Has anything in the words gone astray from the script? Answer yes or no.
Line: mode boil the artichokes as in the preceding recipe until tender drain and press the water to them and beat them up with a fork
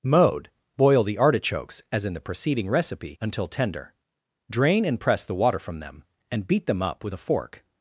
yes